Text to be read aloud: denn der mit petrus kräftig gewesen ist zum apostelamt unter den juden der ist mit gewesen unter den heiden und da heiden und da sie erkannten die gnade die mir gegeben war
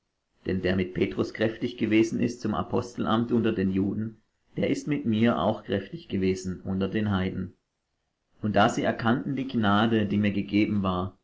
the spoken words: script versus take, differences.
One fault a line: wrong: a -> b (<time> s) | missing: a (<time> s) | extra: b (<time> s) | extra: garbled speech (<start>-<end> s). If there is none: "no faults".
extra: mir auch kräftig (5.0 s)
missing: heiden und da (8.7 s)